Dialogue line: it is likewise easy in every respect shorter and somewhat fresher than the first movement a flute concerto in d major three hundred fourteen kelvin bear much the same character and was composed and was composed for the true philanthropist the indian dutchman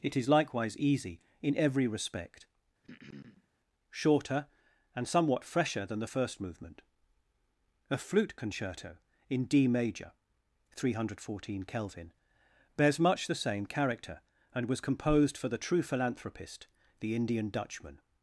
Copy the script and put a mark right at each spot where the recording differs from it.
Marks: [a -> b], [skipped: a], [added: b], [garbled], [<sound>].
it is likewise easy in every respect [throat clearing] shorter and somewhat fresher than the first movement a flute concerto in d major three hundred fourteen kelvin [bear -> bears] much the same character and was composed [skipped: and was composed] for the true philanthropist the indian dutchman